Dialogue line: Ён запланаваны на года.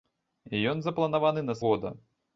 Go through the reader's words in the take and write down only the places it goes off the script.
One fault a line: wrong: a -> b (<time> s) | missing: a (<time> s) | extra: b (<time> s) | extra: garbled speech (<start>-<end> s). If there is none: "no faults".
no faults